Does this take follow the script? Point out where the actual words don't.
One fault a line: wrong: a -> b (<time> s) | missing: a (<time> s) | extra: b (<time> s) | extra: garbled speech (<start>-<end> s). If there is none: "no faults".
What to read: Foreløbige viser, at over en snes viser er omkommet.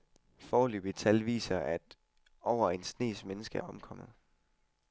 extra: tal (0.9 s)
wrong: viser -> mennesker (3.3 s)